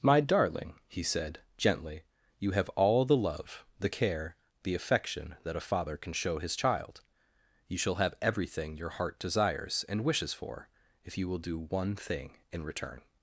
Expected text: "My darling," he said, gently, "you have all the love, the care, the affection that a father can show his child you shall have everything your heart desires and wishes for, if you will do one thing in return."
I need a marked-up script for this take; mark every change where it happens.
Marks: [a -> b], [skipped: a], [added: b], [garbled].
"My darling," he said, gently, "you have all the love, the care, the affection that a father can show his child you shall have everything your heart desires and wishes for, if you will do one thing in return."